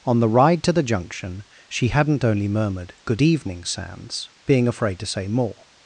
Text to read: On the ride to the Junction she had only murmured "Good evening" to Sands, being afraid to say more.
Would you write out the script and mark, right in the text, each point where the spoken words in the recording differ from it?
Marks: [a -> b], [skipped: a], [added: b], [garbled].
On the ride to the Junction she [had -> hadn't] only murmured "Good evening" [skipped: to] Sands, being afraid to say more.